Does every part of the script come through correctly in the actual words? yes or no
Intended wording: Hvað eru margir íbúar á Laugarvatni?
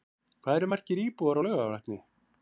yes